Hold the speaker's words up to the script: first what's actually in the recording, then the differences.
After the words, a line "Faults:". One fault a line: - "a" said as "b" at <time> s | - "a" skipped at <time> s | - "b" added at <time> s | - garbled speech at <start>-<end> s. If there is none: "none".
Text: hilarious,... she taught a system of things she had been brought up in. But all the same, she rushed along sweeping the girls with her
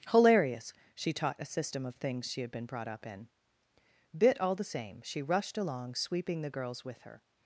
hilarious,... she taught a system of things she had been brought up in. Bit all the same, she rushed along sweeping the girls with her
Faults:
- "But" said as "Bit" at 4.2 s